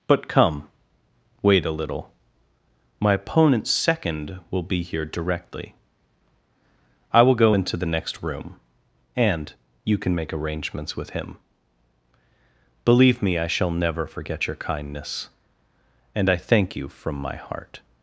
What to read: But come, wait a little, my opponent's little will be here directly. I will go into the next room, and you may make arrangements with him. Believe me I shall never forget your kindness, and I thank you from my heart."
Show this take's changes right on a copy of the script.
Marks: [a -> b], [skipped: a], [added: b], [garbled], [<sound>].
But come, wait a little, my opponent's [little -> second] will be here directly. I will go into the next room, and you [may -> can] make arrangements with him. Believe me I shall never forget your kindness, and I thank you from my heart."